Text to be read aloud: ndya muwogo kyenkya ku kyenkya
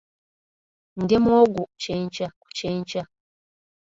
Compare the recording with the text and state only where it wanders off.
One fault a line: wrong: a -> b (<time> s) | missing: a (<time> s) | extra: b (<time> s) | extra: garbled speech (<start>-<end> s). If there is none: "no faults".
no faults